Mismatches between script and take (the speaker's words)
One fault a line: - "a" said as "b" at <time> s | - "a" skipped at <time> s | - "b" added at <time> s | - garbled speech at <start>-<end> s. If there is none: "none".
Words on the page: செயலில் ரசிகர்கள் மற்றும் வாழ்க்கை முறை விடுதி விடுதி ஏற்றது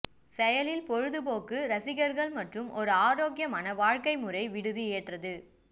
- "பொழுதுபோக்கு" added at 0.9 s
- "ஒரு ஆரோக்கியமான" added at 2.8 s
- "விடுதி" skipped at 4.8 s